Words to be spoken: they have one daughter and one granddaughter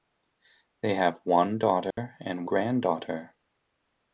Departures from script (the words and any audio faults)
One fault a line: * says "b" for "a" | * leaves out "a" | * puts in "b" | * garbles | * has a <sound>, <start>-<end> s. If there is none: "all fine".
* has a dropout, 1.9-2.0 s
* leaves out "one"